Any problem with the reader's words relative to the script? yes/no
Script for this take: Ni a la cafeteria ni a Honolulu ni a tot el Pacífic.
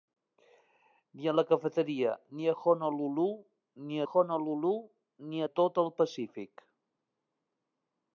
yes